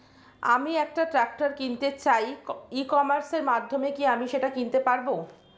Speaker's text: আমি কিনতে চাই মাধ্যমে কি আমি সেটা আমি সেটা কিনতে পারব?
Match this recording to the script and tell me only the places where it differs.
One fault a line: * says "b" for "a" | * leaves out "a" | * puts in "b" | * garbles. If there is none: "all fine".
* puts in "একটা ট্রাক্টর"
* puts in "ই কমার্সের"
* leaves out "আমি সেটা"